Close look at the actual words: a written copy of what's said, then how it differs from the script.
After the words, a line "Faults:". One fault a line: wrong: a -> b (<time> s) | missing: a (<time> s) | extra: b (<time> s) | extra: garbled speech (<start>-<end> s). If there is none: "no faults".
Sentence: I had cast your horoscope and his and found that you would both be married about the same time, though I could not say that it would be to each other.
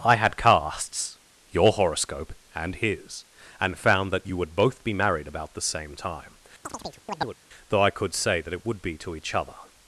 I had casts your horoscope and his and found that you would both be married about the same time, though I could say that it would be to each other.
Faults:
wrong: cast -> casts (0.3 s)
missing: not (8.1 s)